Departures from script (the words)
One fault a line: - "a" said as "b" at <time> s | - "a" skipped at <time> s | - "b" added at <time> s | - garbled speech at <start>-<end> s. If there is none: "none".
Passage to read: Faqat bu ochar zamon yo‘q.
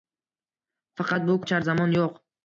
none